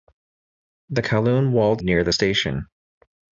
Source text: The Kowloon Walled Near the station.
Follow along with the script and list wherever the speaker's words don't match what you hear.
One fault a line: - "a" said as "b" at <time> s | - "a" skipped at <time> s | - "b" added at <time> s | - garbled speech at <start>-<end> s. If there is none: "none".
none